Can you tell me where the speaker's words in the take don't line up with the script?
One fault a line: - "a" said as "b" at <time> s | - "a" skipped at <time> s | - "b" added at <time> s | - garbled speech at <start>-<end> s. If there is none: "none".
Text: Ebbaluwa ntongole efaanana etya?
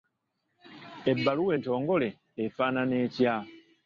none